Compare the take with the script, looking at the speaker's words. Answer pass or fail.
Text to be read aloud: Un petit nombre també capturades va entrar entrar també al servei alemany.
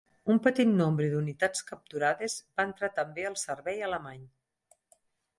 fail